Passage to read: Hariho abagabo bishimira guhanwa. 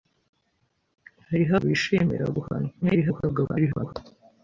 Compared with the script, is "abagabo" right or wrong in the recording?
wrong